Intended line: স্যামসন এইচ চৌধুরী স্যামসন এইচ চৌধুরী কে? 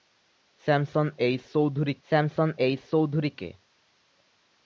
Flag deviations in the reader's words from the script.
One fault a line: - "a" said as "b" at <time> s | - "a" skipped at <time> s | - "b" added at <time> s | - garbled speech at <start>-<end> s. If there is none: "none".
none